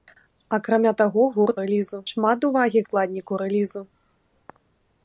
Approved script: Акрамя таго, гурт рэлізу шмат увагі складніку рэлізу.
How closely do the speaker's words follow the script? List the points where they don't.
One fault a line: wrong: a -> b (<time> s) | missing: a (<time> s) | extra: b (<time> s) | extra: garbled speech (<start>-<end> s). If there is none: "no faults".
no faults